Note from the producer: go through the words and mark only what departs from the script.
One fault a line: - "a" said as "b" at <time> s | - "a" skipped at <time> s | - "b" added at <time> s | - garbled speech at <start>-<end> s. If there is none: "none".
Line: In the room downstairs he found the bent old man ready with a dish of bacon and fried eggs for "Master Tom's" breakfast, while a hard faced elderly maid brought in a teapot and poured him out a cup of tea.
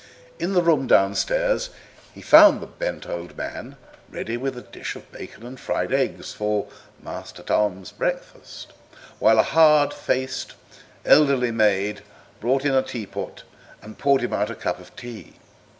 none